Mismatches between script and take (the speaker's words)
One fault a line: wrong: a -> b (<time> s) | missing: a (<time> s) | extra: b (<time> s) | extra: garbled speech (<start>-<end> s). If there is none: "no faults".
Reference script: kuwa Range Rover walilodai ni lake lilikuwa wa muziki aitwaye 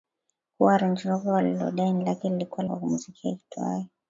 no faults